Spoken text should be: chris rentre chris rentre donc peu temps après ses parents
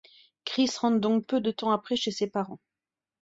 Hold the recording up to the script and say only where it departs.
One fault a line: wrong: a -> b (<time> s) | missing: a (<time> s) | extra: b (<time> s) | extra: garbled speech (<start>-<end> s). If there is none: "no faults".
missing: chris rentre (1.0 s)
extra: de (1.4 s)
extra: chez (2.0 s)